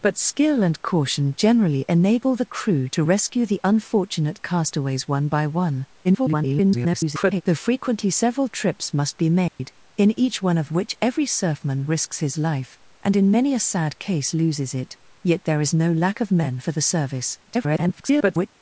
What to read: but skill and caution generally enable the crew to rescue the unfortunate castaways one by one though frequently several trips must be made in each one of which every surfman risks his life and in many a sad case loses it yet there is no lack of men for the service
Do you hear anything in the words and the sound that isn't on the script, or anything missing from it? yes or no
yes